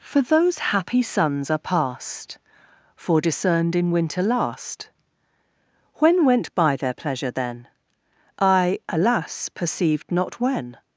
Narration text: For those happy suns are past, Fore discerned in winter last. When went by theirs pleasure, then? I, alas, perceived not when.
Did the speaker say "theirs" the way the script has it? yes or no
no